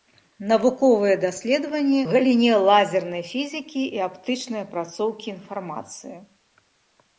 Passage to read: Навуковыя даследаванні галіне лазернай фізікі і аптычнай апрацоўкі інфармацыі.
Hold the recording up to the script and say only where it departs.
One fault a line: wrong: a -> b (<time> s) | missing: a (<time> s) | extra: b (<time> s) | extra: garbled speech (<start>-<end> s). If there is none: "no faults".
no faults